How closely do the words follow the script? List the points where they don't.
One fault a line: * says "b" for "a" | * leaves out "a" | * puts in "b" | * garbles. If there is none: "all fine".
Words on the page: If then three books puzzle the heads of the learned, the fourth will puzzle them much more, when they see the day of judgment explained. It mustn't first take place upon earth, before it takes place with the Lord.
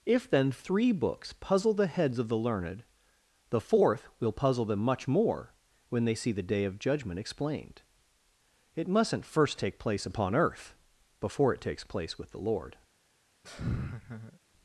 all fine